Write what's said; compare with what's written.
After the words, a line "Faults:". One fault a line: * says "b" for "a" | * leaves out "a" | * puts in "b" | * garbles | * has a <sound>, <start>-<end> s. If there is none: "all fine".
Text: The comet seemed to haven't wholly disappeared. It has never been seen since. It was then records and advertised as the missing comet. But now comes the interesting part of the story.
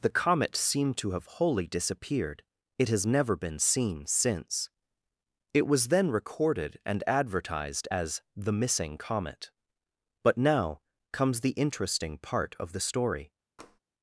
The comet seemed to have wholly disappeared. It has never been seen since. It was then recorded and advertised as the missing comet. But now comes the interesting part of the story.
Faults:
* says "have" for "haven't"
* says "recorded" for "records"
* has a tap, 13.6-13.8 s